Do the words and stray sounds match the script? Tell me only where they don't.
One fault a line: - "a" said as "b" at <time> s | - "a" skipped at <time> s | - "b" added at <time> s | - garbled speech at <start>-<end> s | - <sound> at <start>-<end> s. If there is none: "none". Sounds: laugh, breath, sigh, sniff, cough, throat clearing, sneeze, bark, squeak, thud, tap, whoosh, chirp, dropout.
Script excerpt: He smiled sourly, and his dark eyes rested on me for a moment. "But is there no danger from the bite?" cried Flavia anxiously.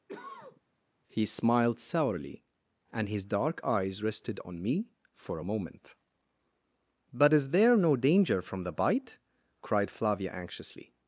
- cough at 0.1-0.6 s